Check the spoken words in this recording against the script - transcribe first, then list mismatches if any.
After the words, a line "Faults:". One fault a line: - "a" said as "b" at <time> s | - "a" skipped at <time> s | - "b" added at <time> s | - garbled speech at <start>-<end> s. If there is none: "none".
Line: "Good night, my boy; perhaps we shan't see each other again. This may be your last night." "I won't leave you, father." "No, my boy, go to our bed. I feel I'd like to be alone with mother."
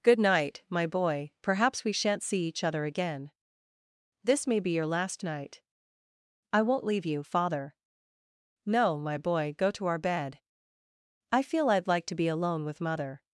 "Good night, my boy; perhaps we shan't see each other again. This may be your last night." "I won't leave you, father." "No, my boy, go to our bed. I feel I'd like to be alone with mother."
Faults:
none